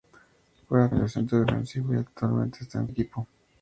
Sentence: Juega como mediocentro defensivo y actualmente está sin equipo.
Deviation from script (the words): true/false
true